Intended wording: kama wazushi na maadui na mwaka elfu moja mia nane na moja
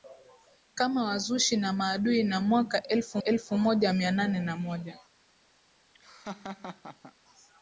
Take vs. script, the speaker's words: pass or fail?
fail